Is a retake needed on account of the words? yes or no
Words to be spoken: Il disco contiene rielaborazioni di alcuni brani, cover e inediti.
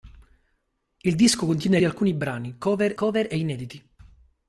yes